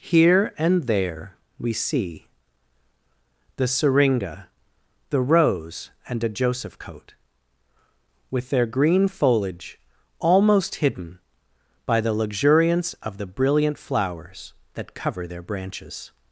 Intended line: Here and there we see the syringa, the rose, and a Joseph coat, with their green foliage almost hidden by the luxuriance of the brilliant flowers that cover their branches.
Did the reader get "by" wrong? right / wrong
right